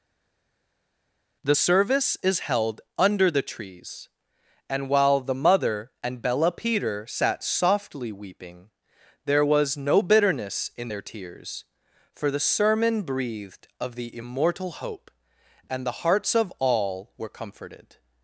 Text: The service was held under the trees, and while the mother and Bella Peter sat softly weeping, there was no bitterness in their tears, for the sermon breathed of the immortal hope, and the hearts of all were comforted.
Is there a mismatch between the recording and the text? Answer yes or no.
yes